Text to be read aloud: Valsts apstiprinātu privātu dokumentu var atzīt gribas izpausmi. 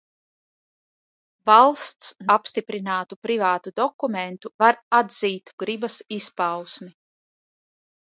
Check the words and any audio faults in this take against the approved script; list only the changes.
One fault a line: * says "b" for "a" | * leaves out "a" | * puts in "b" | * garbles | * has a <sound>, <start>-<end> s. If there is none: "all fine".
all fine